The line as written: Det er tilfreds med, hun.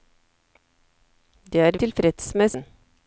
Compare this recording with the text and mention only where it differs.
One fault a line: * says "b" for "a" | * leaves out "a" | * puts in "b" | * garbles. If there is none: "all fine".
all fine